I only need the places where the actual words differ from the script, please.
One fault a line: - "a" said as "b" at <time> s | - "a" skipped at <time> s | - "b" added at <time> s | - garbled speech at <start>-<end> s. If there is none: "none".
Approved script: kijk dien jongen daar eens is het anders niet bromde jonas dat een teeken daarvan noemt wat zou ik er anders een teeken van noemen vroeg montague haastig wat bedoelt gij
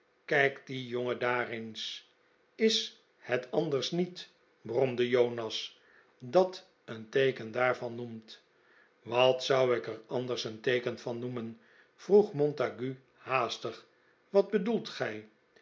none